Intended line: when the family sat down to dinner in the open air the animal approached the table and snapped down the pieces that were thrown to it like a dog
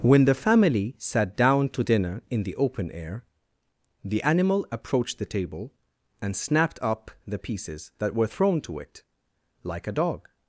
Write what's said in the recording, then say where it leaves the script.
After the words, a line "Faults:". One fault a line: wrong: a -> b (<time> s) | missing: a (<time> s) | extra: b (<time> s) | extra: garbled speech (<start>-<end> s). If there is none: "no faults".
when the family sat down to dinner in the open air the animal approached the table and snapped up the pieces that were thrown to it like a dog
Faults:
wrong: down -> up (6.8 s)